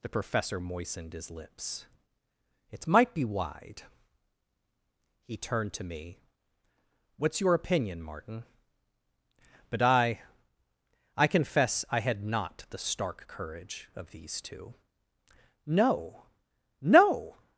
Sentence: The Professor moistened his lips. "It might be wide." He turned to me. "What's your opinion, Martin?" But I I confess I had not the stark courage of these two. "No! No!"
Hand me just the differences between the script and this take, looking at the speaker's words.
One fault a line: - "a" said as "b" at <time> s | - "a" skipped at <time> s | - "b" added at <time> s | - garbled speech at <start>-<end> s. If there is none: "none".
none